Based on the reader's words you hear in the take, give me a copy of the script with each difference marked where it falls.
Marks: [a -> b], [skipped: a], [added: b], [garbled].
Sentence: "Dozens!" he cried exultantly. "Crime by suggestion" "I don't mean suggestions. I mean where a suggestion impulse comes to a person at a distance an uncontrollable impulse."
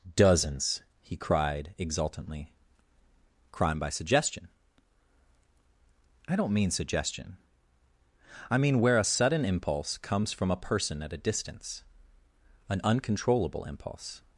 "Dozens!" he cried exultantly. "Crime by suggestion" "I don't mean [suggestions. -> suggestion] I mean where a [suggestion -> sudden] impulse comes [to -> from] a person at a distance an uncontrollable impulse."